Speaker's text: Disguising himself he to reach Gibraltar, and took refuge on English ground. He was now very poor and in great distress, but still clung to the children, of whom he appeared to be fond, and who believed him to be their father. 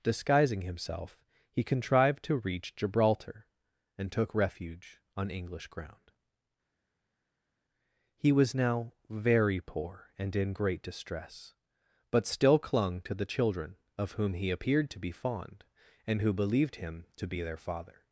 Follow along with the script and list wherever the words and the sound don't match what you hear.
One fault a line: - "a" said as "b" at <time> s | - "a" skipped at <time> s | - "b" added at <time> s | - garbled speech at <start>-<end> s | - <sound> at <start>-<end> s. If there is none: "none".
- "contrived" added at 1.6 s